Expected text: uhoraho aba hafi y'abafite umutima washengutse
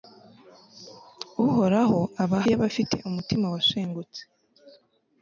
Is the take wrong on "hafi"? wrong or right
wrong